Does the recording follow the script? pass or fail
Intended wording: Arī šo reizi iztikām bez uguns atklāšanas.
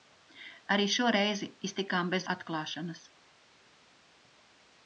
fail